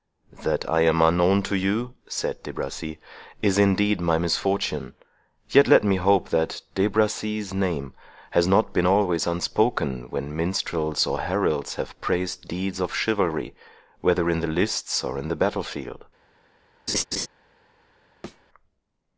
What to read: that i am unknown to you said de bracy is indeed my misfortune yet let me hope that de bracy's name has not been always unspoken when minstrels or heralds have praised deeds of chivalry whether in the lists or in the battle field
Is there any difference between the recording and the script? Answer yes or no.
no